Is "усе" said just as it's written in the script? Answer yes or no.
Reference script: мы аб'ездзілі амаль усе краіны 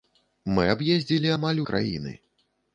no